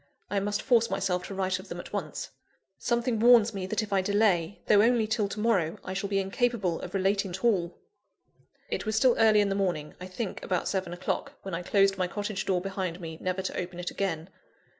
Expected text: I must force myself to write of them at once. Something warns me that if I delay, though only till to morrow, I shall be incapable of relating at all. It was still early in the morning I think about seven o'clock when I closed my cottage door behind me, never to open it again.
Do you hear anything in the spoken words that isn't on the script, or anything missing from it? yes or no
no